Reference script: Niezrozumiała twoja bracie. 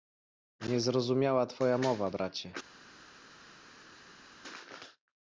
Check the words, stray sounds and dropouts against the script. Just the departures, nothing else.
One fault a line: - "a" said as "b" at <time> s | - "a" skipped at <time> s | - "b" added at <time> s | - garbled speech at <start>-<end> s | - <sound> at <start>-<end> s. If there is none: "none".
- "mowa" added at 1.8 s